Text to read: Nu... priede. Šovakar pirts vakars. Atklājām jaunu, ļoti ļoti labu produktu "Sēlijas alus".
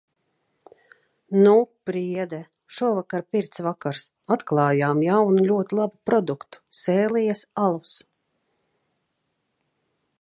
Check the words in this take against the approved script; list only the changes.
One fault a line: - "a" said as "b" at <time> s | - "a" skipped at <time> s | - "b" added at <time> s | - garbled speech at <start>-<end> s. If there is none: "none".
- "ļoti" skipped at 5.8 s